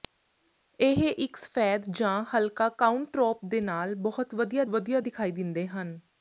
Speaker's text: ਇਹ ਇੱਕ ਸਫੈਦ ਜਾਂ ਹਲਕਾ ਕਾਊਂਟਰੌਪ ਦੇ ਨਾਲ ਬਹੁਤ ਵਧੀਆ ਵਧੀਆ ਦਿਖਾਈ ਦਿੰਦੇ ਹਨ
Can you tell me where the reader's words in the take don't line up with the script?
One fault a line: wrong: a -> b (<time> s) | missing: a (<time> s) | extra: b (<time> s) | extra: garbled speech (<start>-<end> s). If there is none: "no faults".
no faults